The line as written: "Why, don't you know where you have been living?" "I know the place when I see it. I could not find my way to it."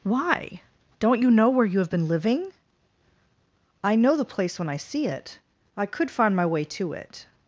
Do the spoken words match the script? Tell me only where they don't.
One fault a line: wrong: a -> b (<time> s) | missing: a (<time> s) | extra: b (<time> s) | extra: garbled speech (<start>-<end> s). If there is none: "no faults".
missing: not (6.1 s)